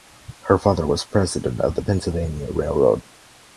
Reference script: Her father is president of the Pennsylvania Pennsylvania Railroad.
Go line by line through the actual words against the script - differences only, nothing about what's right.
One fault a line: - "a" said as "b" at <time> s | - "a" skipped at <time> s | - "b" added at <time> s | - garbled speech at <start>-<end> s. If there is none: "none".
- "is" said as "was" at 0.8 s
- "Pennsylvania" skipped at 2.5 s